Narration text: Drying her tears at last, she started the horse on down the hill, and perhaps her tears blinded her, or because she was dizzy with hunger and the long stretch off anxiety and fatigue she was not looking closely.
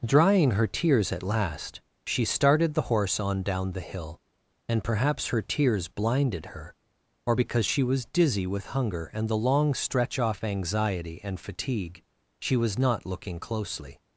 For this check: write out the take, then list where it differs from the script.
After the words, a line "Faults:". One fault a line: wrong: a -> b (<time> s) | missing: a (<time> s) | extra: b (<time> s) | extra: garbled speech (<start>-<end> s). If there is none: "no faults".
Drying her tears at last, she started the horse on down the hill, and perhaps her tears blinded her, or because she was dizzy with hunger and the long stretch off anxiety and fatigue she was not looking closely.
Faults:
no faults